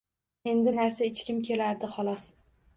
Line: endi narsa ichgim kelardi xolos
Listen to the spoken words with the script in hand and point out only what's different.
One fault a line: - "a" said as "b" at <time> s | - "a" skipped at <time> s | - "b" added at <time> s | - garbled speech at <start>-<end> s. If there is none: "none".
none